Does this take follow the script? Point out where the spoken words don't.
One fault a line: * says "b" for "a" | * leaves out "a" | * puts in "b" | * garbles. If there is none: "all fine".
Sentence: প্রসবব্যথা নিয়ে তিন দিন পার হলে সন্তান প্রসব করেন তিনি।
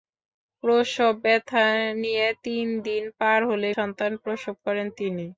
all fine